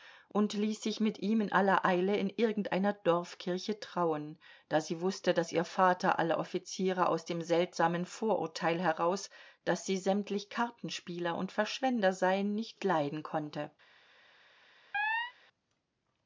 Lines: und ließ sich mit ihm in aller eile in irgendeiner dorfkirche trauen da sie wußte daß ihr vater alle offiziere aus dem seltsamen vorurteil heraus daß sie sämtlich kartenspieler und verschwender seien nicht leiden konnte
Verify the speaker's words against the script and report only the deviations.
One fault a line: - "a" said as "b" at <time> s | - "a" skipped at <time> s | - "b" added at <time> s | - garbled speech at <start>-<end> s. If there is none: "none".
none